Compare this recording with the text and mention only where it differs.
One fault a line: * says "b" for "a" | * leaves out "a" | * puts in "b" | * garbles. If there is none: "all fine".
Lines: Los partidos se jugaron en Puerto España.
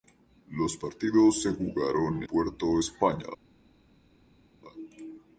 * leaves out "en"